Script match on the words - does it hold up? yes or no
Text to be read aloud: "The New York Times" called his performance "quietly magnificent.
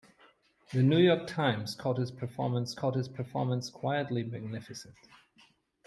no